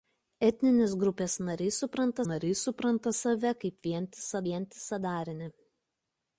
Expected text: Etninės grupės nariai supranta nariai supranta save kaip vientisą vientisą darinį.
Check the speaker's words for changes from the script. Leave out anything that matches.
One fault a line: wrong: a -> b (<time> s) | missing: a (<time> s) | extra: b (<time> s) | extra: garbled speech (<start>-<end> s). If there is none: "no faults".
no faults